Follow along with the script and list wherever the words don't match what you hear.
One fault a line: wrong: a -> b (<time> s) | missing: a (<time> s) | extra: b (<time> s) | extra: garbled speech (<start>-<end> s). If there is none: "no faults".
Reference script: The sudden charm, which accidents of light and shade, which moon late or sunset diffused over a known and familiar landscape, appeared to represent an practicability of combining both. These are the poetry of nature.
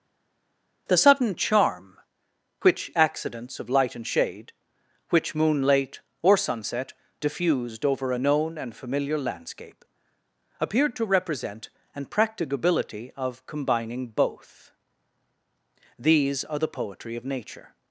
no faults